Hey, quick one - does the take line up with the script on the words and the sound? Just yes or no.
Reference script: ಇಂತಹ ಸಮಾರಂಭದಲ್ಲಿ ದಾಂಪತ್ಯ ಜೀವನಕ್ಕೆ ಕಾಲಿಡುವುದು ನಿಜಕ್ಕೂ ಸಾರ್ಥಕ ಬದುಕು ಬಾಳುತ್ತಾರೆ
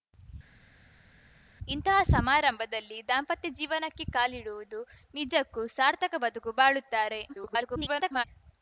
no